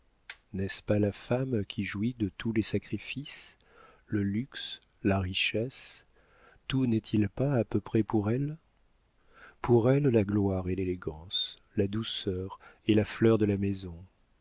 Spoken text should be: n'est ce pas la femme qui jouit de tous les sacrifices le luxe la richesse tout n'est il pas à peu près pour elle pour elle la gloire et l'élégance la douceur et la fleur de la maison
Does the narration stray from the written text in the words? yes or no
no